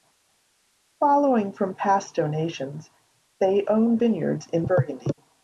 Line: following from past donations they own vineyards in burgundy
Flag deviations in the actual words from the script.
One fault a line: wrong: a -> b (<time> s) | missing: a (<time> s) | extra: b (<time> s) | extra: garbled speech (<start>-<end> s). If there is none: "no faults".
no faults